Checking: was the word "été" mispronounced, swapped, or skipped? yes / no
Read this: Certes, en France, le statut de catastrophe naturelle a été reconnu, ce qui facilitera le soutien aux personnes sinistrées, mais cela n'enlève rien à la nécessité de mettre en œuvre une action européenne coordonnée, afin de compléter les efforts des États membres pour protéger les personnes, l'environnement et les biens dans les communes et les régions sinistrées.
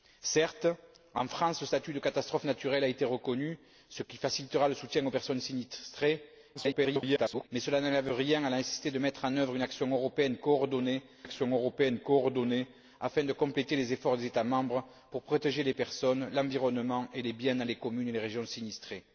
no